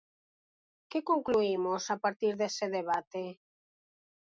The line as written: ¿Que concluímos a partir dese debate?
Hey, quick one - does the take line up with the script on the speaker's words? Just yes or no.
yes